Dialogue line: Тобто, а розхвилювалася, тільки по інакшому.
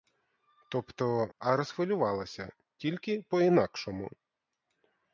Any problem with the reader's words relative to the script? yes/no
no